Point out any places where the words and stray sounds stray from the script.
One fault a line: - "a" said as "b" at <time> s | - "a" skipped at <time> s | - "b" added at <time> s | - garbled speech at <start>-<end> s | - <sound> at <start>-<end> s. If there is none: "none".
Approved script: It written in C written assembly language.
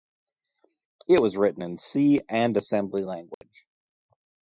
- "was" added at 1.2 s
- "written" said as "and" at 2.3 s
- dropout at 3.3-3.4 s